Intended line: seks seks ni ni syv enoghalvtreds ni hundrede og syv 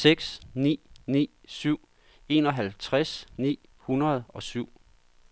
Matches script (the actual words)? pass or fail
fail